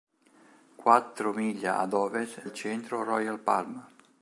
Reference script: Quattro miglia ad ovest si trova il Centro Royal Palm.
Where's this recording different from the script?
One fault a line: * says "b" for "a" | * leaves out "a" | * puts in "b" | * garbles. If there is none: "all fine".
* leaves out "si trova"